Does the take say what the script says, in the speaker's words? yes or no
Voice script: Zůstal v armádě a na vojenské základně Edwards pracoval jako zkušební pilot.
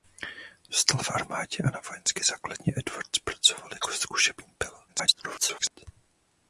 no